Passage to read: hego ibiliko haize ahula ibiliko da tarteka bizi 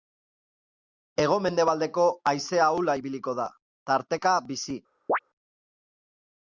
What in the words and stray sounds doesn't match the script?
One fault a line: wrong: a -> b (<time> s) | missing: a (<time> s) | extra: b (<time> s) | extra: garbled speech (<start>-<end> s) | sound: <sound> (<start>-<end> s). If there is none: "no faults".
wrong: ibiliko -> mendebaldeko (1.4 s)
sound: chirp (5.1-5.2 s)